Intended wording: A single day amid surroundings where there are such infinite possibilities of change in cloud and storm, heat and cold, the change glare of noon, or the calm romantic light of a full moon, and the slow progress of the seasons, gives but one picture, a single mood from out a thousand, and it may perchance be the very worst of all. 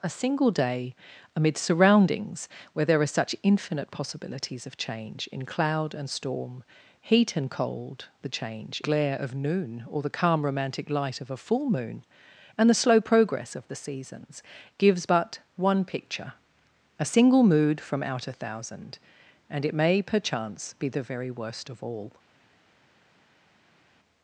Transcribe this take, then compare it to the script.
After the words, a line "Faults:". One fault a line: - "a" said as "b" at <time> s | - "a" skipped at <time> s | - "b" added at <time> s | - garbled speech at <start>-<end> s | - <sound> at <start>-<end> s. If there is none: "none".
A single day amid surroundings where there are such infinite possibilities of change in cloud and storm, heat and cold, the change glare of noon, or the calm romantic light of a full moon, and the slow progress of the seasons, gives but one picture, a single mood from out a thousand, and it may perchance be the very worst of all.
Faults:
none